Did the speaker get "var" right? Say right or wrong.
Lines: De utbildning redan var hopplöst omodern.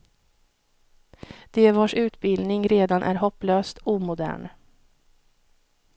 wrong